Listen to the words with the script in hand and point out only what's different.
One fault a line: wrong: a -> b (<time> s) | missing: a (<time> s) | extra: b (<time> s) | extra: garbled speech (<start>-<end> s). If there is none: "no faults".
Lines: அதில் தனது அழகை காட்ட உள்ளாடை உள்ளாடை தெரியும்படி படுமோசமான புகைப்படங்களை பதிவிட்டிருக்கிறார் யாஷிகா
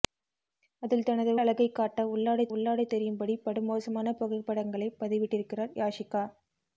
no faults